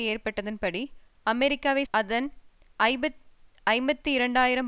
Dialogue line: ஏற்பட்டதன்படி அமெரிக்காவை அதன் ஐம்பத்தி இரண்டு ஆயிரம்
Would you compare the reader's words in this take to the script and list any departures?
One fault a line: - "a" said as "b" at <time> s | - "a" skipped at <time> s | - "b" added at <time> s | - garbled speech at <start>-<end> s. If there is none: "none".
none